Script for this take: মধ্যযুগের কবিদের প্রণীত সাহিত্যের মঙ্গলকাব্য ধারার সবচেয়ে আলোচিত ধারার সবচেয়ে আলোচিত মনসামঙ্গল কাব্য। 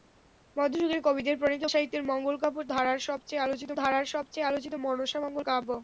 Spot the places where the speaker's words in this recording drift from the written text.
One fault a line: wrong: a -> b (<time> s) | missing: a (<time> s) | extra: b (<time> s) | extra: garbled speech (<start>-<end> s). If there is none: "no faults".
no faults